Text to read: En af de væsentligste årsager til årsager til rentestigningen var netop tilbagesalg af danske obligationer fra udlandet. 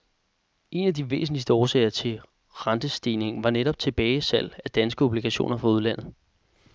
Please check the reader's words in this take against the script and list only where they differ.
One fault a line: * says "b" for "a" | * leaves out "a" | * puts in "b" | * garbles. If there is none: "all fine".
* leaves out "årsager til"